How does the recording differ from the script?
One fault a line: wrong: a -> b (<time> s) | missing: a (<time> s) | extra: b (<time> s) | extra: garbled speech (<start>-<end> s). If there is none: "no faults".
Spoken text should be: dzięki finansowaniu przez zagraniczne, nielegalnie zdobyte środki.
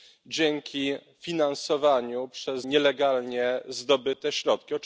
missing: zagraniczne (2.6 s)